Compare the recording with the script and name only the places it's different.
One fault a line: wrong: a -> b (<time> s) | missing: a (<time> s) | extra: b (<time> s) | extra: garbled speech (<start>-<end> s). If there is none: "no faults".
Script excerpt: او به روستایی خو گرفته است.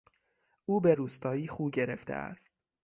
no faults